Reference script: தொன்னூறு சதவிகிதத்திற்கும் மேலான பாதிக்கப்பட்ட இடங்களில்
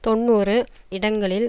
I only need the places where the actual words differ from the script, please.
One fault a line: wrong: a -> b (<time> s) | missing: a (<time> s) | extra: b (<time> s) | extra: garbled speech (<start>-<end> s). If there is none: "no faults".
missing: சதவிகிதத்திற்கும் மேலான பாதிக்கப்பட்ட (0.6 s)